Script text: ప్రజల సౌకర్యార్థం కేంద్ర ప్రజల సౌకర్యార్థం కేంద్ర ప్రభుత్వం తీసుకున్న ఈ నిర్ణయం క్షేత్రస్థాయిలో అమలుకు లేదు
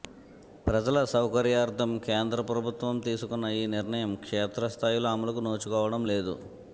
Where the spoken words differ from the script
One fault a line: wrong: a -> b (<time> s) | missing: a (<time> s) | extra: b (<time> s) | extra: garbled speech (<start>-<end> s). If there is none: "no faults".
missing: ప్రజల సౌకర్యార్థం కేంద్ర (2.4 s)
extra: నోచుకోవడం (5.4 s)